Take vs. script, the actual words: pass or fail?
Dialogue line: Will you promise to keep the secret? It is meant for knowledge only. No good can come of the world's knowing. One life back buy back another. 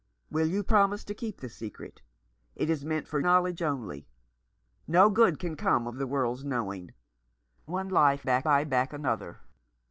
pass